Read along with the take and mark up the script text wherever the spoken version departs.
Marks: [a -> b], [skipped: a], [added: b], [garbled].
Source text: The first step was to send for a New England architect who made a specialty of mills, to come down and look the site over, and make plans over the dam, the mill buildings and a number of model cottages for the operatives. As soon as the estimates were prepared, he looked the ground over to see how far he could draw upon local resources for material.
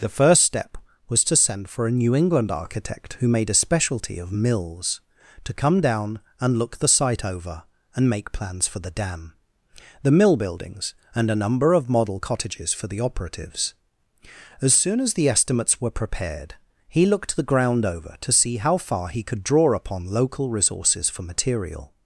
The first step was to send for a New England architect who made a specialty of mills, to come down and look the site over, and make plans [over -> for] the dam, the mill buildings and a number of model cottages for the operatives. As soon as the estimates were prepared, he looked the ground over to see how far he could draw upon local resources for material.